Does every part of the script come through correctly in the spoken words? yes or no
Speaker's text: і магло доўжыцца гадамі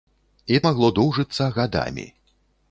yes